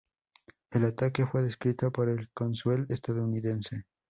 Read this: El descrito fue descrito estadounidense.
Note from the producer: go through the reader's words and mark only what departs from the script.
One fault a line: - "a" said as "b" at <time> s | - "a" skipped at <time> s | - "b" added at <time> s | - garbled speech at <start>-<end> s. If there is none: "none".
- "descrito" said as "ataque" at 0.8 s
- "por el cónsul" added at 1.9 s